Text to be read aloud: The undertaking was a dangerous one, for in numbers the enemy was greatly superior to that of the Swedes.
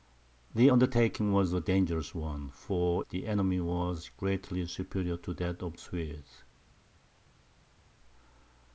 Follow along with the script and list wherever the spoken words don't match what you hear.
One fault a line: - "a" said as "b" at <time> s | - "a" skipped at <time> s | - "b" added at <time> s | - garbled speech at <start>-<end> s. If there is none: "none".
- "in numbers" skipped at 3.1 s
- "the" skipped at 5.8 s